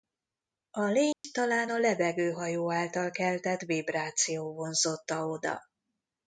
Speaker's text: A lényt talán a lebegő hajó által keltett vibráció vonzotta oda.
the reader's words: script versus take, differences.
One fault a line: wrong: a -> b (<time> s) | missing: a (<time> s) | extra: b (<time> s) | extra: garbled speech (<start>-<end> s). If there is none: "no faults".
no faults